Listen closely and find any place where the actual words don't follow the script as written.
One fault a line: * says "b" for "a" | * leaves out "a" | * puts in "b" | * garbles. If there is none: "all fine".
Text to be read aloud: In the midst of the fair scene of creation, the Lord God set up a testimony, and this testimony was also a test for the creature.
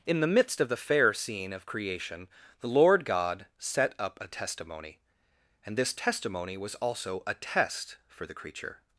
all fine